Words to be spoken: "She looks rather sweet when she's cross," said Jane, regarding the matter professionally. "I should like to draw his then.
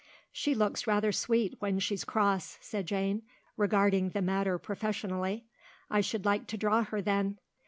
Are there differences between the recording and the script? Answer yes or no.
yes